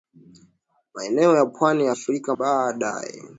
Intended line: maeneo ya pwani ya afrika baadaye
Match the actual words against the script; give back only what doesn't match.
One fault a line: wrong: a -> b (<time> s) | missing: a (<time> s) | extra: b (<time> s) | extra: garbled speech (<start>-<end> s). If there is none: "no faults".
no faults